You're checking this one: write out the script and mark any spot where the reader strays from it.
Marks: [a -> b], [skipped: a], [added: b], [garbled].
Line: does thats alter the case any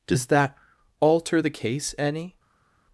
does [thats -> that] alter the case any